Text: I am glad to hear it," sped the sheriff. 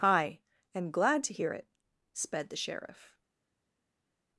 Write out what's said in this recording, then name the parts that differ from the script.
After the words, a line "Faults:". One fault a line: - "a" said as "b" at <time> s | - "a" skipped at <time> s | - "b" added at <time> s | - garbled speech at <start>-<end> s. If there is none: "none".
I am glad to hear it," sped the sheriff.
Faults:
none